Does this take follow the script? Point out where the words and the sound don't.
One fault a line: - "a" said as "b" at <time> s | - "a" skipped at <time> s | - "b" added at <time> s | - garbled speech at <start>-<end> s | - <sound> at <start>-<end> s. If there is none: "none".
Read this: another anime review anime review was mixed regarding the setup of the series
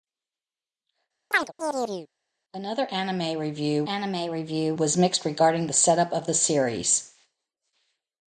- chirp at 1.3-2.1 s